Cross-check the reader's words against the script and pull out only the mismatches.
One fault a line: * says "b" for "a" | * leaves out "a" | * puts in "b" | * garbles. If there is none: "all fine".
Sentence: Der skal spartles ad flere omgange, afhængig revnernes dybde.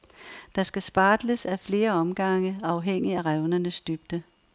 * puts in "af"